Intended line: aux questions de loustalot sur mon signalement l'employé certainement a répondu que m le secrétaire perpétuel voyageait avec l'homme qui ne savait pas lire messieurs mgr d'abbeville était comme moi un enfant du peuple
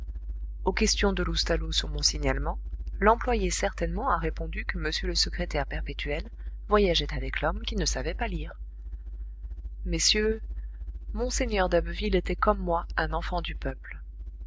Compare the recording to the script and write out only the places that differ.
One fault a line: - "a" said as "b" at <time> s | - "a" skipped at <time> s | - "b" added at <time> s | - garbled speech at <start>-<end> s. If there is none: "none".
none